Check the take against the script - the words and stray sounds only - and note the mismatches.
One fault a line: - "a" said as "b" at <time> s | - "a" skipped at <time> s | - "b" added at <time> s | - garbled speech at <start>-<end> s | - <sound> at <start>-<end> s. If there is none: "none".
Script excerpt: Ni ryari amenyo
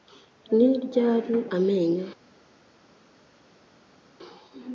none